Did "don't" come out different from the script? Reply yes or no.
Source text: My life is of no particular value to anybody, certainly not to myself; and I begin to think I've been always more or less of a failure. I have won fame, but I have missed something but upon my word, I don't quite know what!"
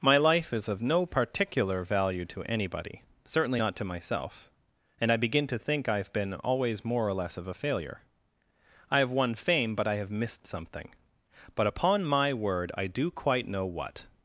yes